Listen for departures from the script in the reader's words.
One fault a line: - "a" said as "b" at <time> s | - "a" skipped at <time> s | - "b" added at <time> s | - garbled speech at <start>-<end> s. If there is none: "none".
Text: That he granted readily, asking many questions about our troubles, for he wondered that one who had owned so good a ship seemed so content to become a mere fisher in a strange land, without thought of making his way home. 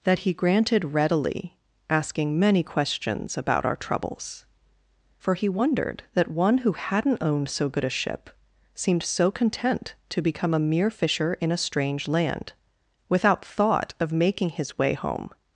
- "had" said as "hadn't" at 6.7 s